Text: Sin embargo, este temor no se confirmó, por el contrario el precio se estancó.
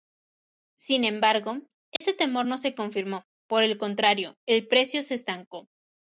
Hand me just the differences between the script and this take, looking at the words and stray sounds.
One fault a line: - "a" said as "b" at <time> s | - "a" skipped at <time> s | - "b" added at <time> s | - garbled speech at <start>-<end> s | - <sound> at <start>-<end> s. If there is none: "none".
- dropout at 2.0-2.0 s